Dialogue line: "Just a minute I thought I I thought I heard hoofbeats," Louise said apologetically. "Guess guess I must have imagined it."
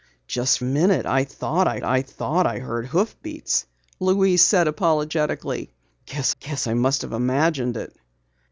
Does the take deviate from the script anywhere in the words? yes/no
no